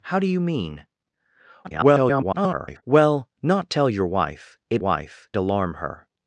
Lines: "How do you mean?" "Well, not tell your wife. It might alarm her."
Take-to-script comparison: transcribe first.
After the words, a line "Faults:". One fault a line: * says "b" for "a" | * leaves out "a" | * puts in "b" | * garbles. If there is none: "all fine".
"How do you mean?" [garbled] "Well, not tell your wife. It wife alarm her."
Faults:
* garbles
* says "wife" for "might"